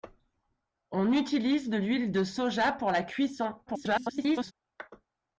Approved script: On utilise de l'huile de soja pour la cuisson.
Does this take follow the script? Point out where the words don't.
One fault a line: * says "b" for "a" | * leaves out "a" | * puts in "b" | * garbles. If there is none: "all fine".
* garbles